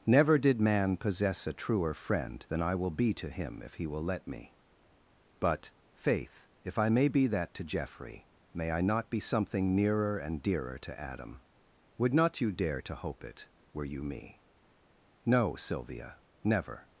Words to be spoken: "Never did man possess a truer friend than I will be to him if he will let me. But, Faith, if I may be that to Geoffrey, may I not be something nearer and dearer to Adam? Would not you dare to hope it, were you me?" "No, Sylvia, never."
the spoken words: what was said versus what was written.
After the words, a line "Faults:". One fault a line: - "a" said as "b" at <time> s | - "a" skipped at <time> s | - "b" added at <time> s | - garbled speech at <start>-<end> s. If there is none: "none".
"Never did man possess a truer friend than I will be to him if he will let me. But, Faith, if I may be that to Geoffrey, may I not be something nearer and dearer to Adam? Would not you dare to hope it, were you me?" "No, Sylvia, never."
Faults:
none